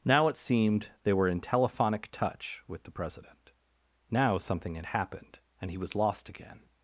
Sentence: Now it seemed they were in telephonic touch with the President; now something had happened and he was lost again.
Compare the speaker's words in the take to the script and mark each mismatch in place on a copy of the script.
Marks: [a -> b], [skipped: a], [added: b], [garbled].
Now it seemed they were in telephonic touch with the President; now something had happened and he was lost again.